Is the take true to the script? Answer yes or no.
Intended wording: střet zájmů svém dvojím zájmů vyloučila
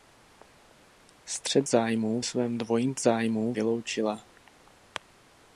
yes